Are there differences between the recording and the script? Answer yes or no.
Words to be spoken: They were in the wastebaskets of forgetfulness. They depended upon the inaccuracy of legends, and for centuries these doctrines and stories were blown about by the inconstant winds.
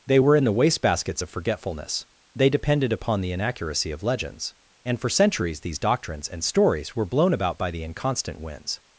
no